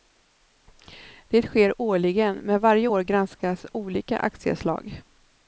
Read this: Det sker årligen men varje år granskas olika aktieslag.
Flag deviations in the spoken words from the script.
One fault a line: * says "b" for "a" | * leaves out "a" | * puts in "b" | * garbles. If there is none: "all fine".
all fine